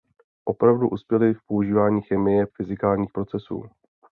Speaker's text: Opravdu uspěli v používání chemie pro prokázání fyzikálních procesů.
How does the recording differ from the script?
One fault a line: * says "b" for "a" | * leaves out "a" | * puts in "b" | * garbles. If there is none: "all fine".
* leaves out "pro prokázání"